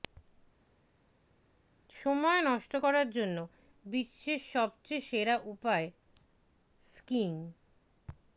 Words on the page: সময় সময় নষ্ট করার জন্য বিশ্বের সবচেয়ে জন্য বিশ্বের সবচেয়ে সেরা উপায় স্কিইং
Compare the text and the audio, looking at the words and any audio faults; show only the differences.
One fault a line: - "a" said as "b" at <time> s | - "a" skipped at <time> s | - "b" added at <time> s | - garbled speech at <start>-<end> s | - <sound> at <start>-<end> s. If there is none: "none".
- "সময়" skipped at 2.4 s
- "জন্য বিশ্বের সবচেয়ে" skipped at 5.1 s